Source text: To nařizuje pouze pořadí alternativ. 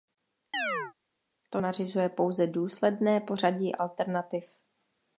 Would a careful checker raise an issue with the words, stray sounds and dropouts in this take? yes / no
yes